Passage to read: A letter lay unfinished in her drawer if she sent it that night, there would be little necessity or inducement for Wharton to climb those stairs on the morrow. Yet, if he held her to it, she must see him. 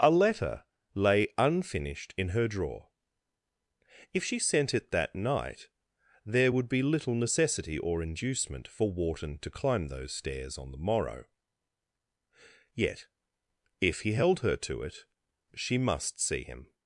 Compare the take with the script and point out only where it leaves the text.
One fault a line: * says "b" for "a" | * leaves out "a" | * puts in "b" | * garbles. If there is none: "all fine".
all fine